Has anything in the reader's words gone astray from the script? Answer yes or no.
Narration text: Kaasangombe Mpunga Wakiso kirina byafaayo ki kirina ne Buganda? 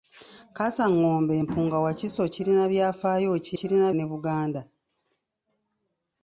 no